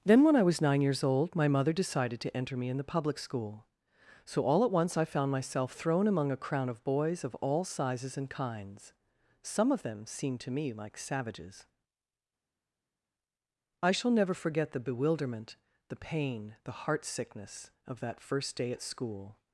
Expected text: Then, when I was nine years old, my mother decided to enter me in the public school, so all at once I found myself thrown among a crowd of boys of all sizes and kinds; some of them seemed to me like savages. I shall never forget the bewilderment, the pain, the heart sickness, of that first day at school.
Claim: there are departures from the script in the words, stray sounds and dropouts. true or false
true